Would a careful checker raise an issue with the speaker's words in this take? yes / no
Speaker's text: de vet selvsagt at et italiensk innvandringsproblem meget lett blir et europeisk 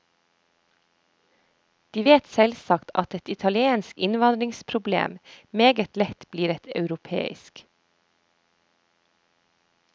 no